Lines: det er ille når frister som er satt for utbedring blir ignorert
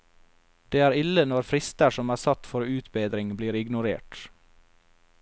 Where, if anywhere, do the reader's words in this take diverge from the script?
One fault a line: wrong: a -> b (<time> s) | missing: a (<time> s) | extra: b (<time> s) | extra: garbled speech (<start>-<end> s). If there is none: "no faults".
no faults